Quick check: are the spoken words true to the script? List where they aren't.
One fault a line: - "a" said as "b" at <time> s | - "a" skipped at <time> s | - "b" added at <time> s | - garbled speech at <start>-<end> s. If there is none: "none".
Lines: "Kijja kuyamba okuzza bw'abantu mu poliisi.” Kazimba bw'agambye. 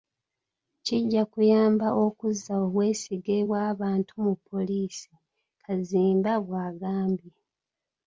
- "obwesige" added at 2.6 s